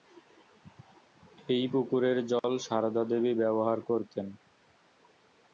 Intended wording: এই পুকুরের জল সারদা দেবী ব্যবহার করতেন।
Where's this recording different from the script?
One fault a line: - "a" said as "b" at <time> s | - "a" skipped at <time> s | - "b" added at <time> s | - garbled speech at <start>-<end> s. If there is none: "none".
none